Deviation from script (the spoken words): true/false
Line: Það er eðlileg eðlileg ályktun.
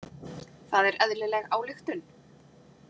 true